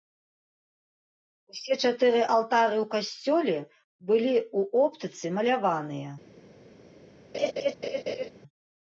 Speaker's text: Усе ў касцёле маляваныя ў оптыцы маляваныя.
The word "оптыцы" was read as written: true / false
true